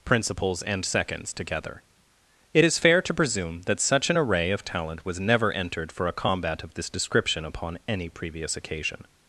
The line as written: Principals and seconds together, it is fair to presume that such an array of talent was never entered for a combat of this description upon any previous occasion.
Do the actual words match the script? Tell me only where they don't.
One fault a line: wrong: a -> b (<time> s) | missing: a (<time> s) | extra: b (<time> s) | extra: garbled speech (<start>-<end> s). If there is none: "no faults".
no faults